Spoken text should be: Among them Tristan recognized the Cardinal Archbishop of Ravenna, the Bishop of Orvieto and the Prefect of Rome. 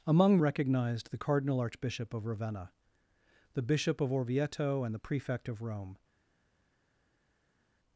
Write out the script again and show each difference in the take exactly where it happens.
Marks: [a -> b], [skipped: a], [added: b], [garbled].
Among [skipped: them Tristan] recognized the Cardinal Archbishop of Ravenna, the Bishop of Orvieto and the Prefect of Rome.